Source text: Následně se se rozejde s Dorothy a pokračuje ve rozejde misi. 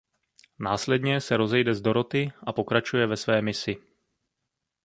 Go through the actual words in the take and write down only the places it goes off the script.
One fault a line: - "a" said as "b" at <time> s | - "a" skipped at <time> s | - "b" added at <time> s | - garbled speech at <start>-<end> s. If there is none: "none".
- "se" skipped at 1.4 s
- "rozejde" said as "své" at 3.2 s